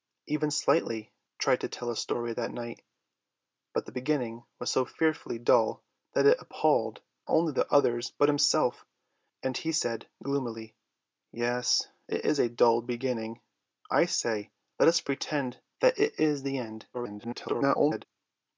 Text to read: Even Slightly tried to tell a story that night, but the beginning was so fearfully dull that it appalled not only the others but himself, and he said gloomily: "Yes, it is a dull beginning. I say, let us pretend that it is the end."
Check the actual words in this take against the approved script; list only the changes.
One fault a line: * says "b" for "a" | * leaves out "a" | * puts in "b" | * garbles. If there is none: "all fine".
* leaves out "not"
* garbles